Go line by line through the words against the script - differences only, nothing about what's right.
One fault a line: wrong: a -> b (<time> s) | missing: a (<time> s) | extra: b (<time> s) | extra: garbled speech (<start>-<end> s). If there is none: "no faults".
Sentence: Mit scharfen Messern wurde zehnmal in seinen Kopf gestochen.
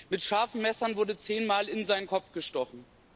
no faults